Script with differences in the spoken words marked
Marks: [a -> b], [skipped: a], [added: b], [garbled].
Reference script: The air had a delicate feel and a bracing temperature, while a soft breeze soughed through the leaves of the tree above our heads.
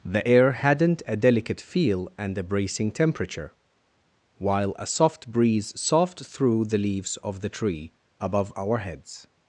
The air [had -> hadn't] a delicate feel and a bracing temperature, while a soft breeze soughed through the leaves of the tree above our heads.